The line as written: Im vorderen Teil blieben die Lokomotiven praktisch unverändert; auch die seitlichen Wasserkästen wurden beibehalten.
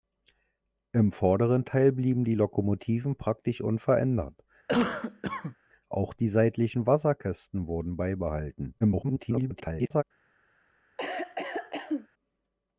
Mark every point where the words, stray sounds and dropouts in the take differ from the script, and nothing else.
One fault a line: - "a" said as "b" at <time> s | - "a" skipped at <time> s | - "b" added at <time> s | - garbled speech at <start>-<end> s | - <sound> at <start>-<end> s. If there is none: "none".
- cough at 4.7-5.6 s
- garbled speech at 8.8-10.0 s
- cough at 11.0-12.1 s